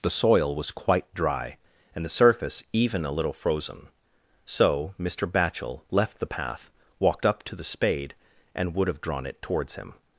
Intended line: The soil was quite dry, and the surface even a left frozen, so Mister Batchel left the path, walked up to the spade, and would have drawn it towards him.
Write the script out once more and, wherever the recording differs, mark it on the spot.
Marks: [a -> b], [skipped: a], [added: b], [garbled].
The soil was quite dry, and the surface even a [left -> little] frozen, so Mister Batchel left the path, walked up to the spade, and would have drawn it towards him.